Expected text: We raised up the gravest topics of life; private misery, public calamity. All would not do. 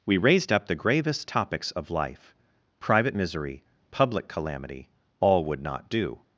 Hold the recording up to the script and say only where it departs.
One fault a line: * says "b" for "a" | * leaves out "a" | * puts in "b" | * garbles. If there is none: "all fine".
all fine